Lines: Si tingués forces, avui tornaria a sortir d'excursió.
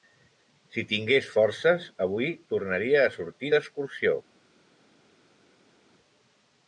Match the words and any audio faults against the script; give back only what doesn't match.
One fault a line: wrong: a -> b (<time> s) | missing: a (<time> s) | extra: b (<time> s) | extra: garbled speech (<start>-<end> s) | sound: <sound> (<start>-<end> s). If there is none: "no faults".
no faults